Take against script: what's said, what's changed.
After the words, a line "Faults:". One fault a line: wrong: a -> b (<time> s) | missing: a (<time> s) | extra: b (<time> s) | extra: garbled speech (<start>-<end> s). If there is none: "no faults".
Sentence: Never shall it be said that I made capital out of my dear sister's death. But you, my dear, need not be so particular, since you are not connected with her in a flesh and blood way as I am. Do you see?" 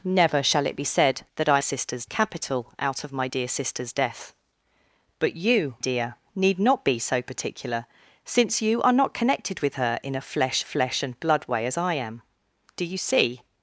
Never shall it be said that I sister's capital out of my dear sister's death. But you, dear, need not be so particular, since you are not connected with her in a flesh flesh and blood way as I am. Do you see?"
Faults:
wrong: made -> sister's (1.6 s)
missing: my (5.8 s)
extra: flesh (10.6 s)